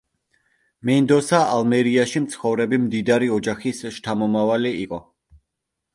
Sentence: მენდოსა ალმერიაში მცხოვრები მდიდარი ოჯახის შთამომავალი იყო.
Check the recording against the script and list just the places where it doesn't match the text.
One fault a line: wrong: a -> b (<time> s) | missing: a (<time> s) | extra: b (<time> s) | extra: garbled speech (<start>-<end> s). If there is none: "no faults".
no faults